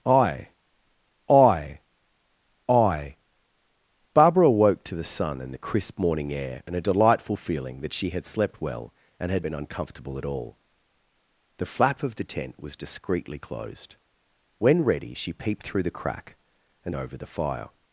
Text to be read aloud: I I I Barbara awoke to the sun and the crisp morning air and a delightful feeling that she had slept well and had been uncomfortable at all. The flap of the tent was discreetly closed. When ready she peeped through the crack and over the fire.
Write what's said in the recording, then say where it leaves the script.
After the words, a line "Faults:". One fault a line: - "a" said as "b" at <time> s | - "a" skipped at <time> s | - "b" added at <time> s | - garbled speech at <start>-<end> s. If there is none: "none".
I I I Barbara awoke to the sun and the crisp morning air and a delightful feeling that she had slept well and had been uncomfortable at all. The flap of the tent was discreetly closed. When ready she peeped through the crack and over the fire.
Faults:
none